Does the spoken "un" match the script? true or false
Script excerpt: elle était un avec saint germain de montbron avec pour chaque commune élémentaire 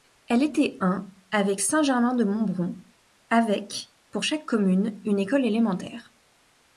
true